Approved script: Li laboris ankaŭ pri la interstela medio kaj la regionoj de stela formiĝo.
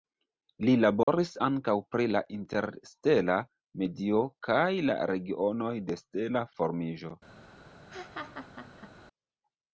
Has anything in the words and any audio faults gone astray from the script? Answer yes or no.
yes